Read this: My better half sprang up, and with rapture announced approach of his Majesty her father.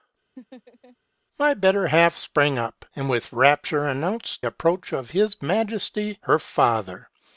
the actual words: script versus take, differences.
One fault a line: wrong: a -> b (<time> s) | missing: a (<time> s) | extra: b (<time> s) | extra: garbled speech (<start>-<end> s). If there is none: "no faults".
no faults